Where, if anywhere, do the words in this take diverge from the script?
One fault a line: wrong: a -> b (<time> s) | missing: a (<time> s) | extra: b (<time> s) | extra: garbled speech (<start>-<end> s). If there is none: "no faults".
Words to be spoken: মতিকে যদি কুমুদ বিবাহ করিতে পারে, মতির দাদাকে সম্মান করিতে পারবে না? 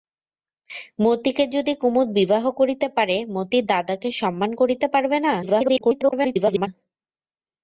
extra: garbled speech (5.4-6.7 s)